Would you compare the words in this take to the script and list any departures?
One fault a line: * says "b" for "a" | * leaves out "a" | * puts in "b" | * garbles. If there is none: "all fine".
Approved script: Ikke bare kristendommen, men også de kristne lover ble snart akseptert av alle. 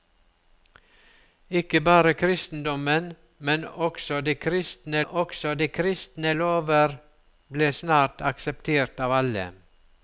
* puts in "også de kristne"